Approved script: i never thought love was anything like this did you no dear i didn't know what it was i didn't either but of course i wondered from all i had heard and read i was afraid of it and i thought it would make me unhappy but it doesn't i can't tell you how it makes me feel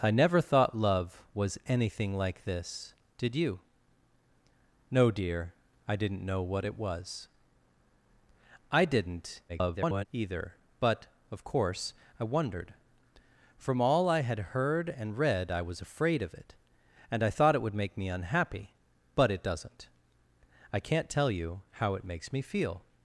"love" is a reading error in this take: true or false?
false